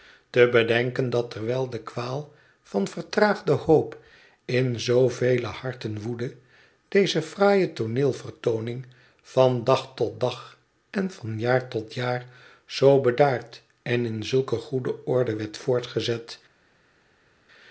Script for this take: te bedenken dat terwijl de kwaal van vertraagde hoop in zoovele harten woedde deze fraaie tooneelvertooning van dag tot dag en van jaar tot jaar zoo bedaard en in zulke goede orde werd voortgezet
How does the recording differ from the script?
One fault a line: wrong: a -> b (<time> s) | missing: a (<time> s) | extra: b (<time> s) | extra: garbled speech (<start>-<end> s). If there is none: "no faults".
no faults